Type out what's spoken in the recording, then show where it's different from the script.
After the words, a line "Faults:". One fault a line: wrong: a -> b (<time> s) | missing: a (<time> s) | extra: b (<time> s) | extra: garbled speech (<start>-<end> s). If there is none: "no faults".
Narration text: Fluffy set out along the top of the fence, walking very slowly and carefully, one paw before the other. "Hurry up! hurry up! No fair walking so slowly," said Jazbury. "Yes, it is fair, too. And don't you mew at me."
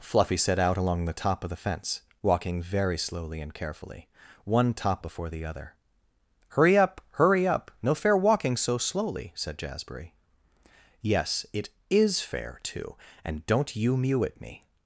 Fluffy set out along the top of the fence, walking very slowly and carefully, one top before the other. "Hurry up! hurry up! No fair walking so slowly," said Jazbury. "Yes, it is fair, too. And don't you mew at me."
Faults:
wrong: paw -> top (4.7 s)